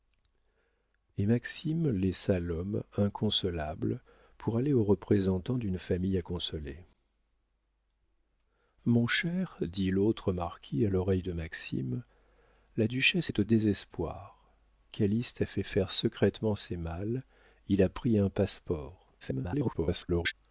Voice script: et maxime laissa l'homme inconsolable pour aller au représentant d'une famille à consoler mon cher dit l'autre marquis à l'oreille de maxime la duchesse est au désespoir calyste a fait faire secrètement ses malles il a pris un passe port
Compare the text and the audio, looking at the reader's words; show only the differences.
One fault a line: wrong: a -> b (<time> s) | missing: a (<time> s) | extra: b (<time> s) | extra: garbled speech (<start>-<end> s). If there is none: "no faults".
extra: garbled speech (19.2-20.3 s)